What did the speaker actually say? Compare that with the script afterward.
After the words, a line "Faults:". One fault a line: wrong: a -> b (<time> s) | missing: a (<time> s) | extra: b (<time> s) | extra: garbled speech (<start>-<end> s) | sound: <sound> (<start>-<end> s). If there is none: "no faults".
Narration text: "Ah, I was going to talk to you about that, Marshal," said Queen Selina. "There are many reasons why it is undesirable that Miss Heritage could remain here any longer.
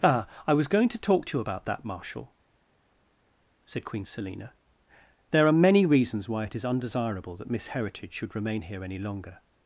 "Ah, I was going to talk to you about that, Marshal," said Queen Selina. "There are many reasons why it is undesirable that Miss Heritage should remain here any longer.
Faults:
wrong: could -> should (8.1 s)